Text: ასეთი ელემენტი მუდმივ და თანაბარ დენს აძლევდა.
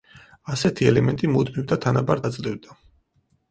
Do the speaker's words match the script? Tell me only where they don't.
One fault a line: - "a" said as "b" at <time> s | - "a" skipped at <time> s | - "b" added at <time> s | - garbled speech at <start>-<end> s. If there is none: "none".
- "დენს" skipped at 2.2 s